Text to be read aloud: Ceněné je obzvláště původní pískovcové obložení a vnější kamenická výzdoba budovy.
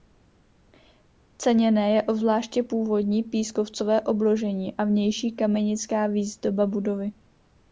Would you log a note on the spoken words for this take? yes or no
no